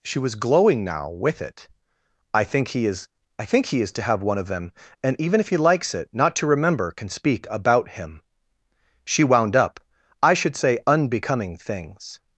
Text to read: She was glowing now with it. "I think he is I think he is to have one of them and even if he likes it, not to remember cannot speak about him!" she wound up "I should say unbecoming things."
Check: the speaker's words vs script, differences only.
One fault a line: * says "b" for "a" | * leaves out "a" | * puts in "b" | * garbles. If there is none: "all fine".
* says "can" for "cannot"